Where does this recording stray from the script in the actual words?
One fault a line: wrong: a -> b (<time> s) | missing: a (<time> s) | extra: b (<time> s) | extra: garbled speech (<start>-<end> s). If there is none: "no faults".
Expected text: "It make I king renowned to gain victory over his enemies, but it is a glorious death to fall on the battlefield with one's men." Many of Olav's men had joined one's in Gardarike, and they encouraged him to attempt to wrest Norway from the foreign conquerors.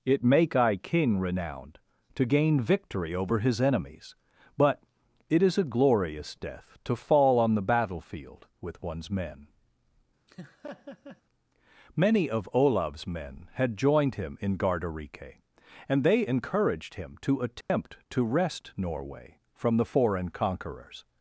wrong: one's -> him (14.1 s)